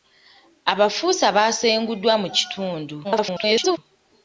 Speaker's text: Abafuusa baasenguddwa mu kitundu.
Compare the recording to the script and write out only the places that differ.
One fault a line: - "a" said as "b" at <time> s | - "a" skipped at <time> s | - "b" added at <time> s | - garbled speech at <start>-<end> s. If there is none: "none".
- garbled speech at 3.0-3.8 s